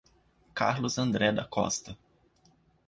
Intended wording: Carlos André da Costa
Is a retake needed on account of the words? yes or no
no